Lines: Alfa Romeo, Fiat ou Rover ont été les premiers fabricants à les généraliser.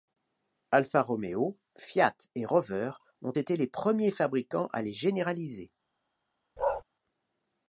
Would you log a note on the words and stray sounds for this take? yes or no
yes